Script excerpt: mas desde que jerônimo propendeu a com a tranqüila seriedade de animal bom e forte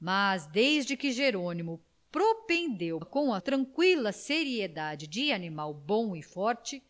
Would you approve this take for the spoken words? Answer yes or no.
yes